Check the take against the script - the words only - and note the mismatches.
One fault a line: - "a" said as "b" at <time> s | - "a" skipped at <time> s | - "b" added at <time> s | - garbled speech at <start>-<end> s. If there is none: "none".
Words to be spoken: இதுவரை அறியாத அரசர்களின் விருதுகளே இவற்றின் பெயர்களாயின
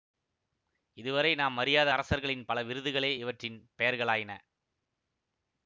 - "நாம்" added at 1.4 s
- "பல" added at 2.4 s